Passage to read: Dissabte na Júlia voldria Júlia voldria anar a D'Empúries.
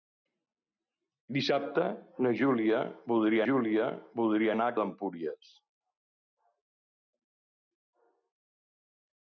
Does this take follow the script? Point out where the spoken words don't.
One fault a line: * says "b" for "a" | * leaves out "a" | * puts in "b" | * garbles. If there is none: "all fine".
all fine